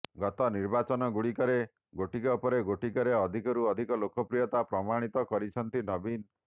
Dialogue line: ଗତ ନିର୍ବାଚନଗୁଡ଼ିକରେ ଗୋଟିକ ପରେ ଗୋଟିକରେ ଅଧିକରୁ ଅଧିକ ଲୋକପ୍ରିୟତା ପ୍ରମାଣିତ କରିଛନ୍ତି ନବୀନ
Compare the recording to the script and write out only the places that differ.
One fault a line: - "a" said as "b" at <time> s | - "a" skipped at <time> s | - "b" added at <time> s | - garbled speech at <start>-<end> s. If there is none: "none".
none